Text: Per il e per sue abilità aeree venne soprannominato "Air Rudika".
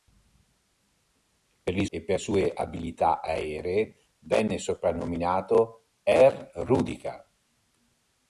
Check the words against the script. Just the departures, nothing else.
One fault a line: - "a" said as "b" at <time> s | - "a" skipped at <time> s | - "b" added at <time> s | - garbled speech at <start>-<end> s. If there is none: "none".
none